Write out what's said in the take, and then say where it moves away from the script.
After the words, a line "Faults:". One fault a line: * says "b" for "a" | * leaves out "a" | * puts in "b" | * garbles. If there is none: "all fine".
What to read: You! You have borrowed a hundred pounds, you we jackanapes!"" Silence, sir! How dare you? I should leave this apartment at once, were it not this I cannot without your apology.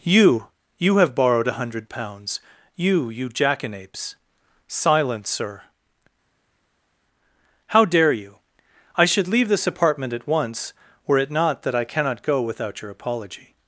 You! You have borrowed a hundred pounds, you you jackanapes!"" Silence, sir! How dare you? I should leave this apartment at once, were it not that I cannot go without your apology.
Faults:
* says "you" for "we"
* says "that" for "this"
* puts in "go"